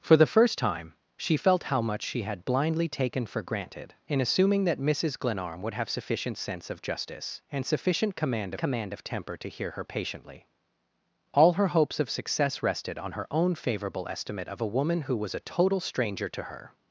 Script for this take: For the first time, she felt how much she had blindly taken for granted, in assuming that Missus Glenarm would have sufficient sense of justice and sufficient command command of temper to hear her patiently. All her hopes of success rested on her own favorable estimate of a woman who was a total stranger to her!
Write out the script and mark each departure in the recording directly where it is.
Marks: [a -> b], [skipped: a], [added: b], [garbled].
For the first time, she felt how much she had blindly taken for granted, in assuming that Missus Glenarm would have sufficient sense of justice and sufficient command command of temper to hear her patiently. All her hopes of success rested on her own favorable estimate of a woman who was a total stranger to her!